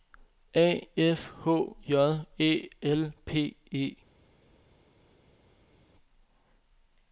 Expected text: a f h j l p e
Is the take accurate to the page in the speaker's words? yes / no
no